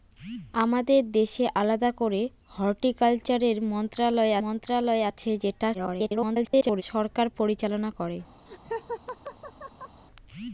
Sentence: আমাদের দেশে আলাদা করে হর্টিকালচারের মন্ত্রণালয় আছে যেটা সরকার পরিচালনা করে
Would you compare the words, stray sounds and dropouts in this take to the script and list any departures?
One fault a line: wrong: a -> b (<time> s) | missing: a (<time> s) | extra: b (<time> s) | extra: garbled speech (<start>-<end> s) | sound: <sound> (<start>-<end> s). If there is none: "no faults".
extra: মন্ত্রণালয় (4.4 s)
extra: garbled speech (5.7-6.8 s)
sound: laugh (8.5-10.0 s)